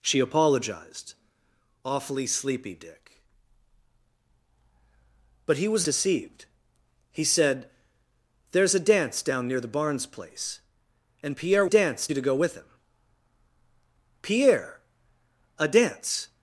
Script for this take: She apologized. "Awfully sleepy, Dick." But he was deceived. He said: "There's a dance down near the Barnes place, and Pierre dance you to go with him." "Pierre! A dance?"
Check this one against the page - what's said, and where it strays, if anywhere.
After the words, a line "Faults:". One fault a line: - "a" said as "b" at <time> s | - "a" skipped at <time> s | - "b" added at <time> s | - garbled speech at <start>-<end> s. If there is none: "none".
She apologized. "Awfully sleepy, Dick." But he was deceived. He said: "There's a dance down near the Barnes place, and Pierre dance you to go with him." "Pierre! A dance?"
Faults:
none